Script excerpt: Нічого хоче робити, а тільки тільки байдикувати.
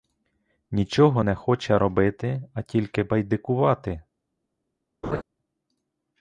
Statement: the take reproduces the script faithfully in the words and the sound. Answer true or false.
false